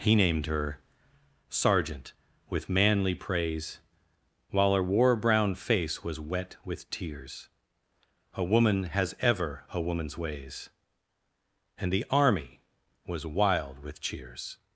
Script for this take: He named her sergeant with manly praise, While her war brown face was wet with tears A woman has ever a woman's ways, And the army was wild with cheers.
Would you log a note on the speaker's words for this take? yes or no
no